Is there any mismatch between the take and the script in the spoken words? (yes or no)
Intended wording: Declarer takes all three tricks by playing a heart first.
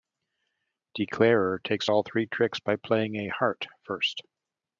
no